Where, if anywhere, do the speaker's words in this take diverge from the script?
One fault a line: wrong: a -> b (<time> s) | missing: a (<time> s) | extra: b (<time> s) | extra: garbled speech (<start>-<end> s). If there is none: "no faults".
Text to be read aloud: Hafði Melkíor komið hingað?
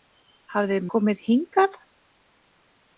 missing: Melkíor (0.8 s)